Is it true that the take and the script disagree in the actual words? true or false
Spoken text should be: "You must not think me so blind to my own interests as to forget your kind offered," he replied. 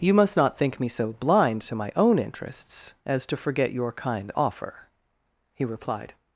true